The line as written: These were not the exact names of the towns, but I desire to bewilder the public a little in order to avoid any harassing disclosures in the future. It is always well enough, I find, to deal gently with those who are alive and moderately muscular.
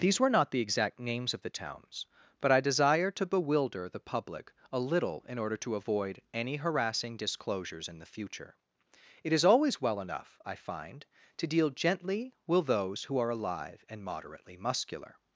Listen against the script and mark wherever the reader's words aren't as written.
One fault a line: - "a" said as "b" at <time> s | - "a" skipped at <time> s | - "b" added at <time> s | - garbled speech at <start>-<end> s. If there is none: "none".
none